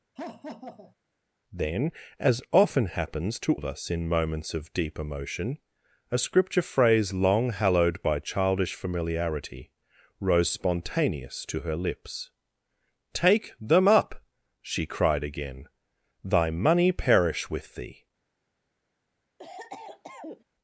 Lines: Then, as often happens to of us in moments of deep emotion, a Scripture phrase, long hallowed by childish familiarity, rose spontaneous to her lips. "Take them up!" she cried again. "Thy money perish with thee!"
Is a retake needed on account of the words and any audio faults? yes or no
yes